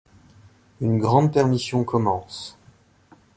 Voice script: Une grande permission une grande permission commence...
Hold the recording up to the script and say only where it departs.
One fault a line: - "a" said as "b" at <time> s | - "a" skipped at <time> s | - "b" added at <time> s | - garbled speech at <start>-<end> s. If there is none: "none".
- "une grande permission" skipped at 1.8 s